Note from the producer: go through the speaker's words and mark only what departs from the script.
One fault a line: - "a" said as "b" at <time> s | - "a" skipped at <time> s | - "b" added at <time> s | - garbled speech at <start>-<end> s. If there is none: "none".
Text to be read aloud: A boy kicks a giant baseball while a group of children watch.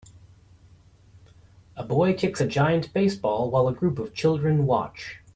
none